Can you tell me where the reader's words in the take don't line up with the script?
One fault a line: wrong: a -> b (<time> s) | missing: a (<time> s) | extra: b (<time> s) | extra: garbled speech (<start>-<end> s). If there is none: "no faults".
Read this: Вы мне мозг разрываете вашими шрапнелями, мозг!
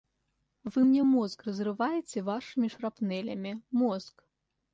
no faults